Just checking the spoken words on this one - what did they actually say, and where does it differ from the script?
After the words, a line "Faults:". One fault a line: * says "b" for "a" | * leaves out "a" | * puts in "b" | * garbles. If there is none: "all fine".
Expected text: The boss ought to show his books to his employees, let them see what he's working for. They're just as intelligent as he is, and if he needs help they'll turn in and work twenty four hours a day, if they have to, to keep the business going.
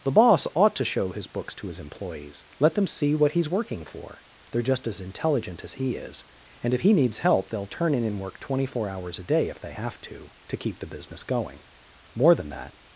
The boss ought to show his books to his employees, let them see what he's working for. They're just as intelligent as he is, and if he needs help they'll turn in and work twenty four hours a day, if they have to, to keep the business going. More than that
Faults:
* puts in "More than that"